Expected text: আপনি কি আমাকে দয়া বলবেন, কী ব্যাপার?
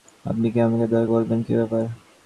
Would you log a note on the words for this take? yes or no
no